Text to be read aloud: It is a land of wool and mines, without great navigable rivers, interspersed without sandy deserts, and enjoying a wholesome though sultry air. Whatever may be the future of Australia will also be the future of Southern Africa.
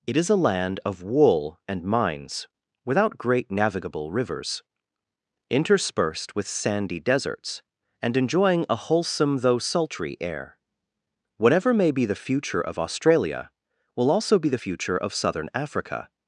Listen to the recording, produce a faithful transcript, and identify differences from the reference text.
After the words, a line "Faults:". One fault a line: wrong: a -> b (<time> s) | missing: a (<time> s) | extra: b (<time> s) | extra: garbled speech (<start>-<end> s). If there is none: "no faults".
It is a land of wool and mines, without great navigable rivers, interspersed with sandy deserts, and enjoying a wholesome though sultry air. Whatever may be the future of Australia will also be the future of Southern Africa.
Faults:
wrong: without -> with (6.3 s)